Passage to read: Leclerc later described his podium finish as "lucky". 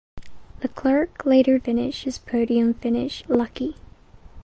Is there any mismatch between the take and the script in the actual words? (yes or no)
yes